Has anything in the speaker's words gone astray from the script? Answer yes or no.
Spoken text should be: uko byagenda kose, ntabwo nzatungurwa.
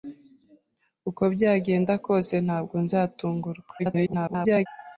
yes